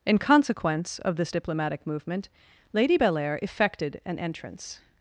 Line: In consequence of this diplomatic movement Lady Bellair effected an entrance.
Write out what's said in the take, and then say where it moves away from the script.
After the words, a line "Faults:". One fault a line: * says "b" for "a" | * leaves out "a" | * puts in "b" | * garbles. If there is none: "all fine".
In consequence of this diplomatic movement Lady Bellair effected an entrance.
Faults:
all fine